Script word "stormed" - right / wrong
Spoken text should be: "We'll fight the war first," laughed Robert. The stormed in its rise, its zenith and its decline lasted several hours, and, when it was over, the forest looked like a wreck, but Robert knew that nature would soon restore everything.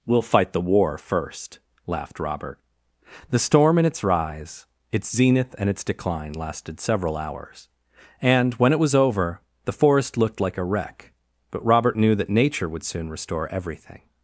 wrong